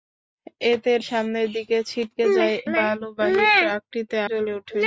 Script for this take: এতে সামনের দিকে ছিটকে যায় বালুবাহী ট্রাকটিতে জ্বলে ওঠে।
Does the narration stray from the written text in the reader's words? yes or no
no